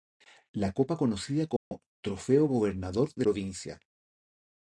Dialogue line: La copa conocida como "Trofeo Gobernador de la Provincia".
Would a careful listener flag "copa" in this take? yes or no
no